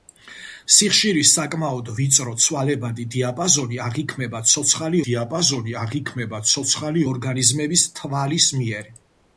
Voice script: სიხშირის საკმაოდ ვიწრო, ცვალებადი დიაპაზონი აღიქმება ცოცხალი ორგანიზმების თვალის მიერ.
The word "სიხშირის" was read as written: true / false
true